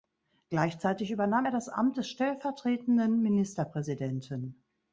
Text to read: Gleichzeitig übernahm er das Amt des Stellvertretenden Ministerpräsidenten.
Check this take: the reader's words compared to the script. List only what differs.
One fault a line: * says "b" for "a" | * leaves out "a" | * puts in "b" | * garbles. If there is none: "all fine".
all fine